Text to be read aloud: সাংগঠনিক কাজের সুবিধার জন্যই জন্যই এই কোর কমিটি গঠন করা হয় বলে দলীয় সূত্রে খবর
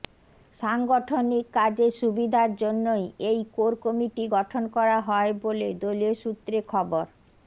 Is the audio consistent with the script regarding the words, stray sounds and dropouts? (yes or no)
no